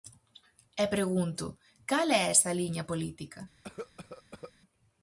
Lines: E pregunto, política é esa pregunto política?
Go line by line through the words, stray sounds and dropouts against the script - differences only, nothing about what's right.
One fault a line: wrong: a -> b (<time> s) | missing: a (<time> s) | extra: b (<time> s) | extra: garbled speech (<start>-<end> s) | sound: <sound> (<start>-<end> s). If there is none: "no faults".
wrong: política -> cal (1.9 s)
wrong: pregunto -> liña (2.6 s)
sound: cough (3.6-4.5 s)